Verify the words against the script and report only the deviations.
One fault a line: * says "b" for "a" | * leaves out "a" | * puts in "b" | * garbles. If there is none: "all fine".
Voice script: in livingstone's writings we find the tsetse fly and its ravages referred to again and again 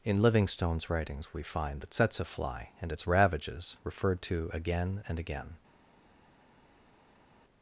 all fine